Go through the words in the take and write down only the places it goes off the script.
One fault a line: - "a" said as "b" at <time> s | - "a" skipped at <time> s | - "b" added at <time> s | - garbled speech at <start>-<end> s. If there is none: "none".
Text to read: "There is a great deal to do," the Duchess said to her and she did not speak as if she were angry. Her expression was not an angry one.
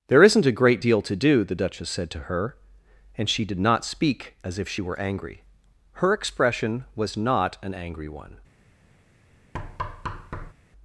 - "is" said as "isn't" at 0.2 s